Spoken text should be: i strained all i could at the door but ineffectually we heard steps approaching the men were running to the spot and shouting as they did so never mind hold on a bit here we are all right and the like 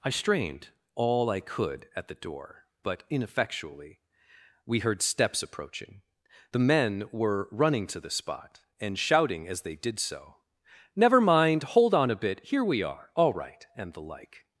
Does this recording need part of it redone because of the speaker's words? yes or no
no